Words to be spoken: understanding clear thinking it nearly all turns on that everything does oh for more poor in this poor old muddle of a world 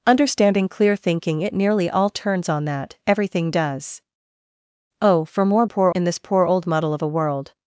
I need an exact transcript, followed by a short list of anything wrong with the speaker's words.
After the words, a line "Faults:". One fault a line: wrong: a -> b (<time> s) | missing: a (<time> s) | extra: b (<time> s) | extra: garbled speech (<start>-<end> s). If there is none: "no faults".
understanding clear thinking it nearly all turns on that everything does oh for more poor in this poor old muddle of a world
Faults:
no faults